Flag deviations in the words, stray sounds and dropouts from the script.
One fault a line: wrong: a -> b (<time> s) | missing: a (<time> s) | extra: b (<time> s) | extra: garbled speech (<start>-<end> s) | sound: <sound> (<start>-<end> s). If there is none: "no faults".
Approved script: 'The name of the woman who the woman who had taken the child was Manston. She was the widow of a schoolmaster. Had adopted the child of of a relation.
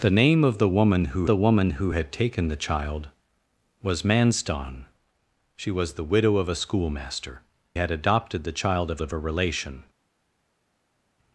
no faults